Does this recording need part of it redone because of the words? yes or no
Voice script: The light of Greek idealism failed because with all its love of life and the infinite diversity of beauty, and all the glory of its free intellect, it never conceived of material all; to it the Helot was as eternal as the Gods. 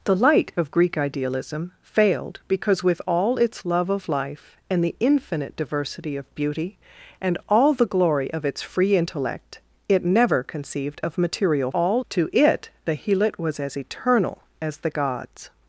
no